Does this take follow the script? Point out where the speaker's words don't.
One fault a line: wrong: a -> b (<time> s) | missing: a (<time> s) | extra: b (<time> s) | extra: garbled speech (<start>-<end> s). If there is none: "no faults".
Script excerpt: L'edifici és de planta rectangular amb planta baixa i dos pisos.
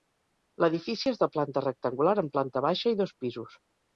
no faults